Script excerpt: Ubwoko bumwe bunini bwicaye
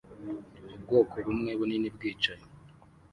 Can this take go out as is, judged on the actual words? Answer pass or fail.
pass